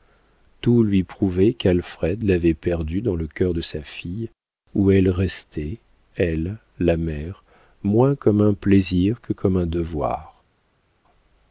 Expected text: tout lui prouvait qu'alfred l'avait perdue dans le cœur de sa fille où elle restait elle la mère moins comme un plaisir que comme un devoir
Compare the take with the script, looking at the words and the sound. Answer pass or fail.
pass